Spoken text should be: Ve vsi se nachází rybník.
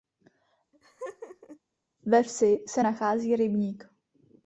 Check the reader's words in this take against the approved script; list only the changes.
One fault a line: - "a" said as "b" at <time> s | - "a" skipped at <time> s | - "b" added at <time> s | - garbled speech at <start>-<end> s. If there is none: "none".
none